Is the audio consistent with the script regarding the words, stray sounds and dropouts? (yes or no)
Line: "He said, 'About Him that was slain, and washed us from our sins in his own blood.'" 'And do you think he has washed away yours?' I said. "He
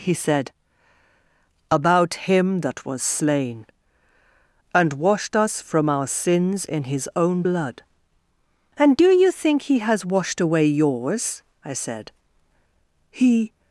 yes